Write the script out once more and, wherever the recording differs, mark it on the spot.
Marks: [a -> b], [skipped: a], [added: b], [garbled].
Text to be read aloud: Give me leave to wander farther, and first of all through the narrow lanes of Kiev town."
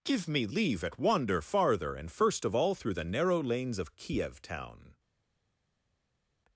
Give me leave [to -> at] wander farther, and first of all through the narrow lanes of Kiev town."